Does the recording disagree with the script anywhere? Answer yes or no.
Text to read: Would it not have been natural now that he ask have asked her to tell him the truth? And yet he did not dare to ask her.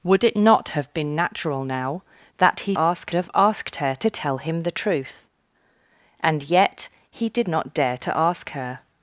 no